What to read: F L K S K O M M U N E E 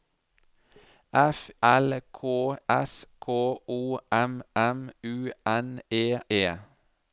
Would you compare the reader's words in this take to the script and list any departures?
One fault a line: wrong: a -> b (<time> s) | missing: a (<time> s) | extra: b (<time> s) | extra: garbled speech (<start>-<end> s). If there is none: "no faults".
no faults